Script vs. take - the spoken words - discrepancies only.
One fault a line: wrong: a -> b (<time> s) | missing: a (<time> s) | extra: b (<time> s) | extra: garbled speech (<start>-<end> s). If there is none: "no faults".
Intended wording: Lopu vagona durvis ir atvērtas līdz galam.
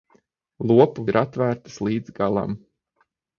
missing: vagona durvis (1.1 s)